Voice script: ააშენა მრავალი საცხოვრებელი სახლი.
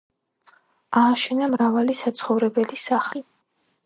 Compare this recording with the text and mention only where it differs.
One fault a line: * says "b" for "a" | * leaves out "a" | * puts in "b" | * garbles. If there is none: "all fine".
all fine